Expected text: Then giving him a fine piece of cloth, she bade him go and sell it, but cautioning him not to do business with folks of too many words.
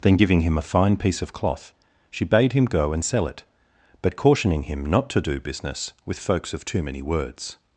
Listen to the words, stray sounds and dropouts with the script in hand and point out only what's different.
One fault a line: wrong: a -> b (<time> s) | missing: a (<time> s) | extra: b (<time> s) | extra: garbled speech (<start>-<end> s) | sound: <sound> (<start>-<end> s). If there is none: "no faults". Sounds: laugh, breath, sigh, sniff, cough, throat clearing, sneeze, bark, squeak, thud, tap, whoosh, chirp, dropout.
no faults